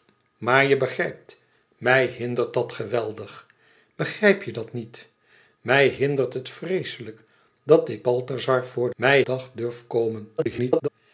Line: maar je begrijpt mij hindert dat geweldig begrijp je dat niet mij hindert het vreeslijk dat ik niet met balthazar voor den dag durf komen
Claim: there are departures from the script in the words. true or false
true